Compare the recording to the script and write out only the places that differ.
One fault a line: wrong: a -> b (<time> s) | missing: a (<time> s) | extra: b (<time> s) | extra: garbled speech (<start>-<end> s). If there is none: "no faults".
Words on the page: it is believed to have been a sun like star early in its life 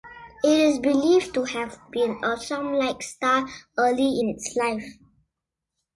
no faults